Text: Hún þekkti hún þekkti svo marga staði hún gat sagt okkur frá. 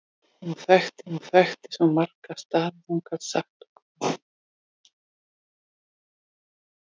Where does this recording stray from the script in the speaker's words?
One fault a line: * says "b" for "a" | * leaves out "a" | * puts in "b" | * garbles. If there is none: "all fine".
all fine